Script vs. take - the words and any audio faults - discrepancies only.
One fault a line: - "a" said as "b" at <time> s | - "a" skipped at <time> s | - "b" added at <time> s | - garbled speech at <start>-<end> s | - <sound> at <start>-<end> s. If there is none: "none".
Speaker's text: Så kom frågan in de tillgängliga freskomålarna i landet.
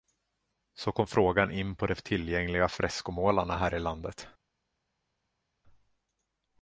- "på" added at 1.7 s
- "här" added at 3.6 s